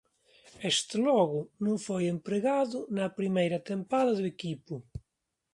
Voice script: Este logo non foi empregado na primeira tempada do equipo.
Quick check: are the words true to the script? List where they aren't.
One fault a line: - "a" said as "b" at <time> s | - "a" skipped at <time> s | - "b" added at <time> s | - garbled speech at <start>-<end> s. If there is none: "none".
none